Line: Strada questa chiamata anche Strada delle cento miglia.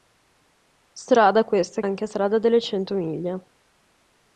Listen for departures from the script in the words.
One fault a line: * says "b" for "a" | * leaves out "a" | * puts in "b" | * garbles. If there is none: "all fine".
* leaves out "chiamata"